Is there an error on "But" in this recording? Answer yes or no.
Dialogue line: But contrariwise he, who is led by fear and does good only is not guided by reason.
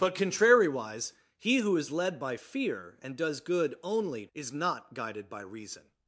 no